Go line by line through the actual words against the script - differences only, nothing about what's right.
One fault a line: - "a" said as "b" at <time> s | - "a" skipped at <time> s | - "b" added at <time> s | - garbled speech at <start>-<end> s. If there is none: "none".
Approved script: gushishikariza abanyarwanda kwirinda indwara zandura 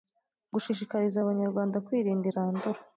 - "indwara" skipped at 2.3 s